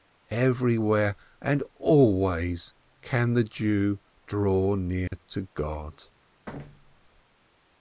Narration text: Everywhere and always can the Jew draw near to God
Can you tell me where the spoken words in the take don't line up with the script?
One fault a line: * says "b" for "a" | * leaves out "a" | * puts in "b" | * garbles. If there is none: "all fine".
all fine